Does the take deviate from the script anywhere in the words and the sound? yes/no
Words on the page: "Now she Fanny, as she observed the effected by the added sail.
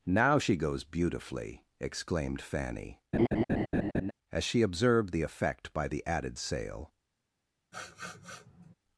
yes